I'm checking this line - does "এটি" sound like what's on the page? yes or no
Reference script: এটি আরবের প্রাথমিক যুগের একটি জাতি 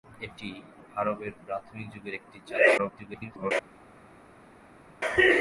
yes